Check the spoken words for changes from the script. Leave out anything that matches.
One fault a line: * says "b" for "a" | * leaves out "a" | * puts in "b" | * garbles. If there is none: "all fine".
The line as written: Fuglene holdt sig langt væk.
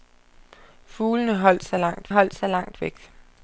* puts in "holdt sig langt"